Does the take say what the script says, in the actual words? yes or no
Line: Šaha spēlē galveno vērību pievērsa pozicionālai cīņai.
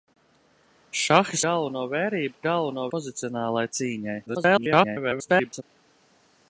no